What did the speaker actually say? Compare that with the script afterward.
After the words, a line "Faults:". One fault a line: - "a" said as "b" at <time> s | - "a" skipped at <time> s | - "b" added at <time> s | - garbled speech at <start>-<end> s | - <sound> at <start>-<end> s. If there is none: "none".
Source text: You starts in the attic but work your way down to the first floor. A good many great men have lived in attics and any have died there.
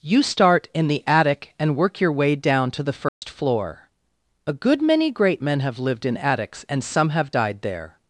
You start in the attic and work your way down to the first floor. A good many great men have lived in attics and some have died there.
Faults:
- "starts" said as "start" at 0.2 s
- "but" said as "and" at 1.6 s
- dropout at 3.1-3.2 s
- "any" said as "some" at 6.8 s